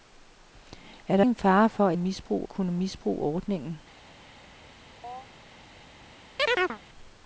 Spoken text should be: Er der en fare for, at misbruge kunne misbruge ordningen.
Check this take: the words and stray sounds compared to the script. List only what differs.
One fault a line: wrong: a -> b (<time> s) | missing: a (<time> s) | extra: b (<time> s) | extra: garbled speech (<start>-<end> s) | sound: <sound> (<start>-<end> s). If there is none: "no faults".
sound: chirp (5.0-5.3 s)
sound: chirp (6.4-6.8 s)